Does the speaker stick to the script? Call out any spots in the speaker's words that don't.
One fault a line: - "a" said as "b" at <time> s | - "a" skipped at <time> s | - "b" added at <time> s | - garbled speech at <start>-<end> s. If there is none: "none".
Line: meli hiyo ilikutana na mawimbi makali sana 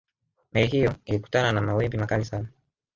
none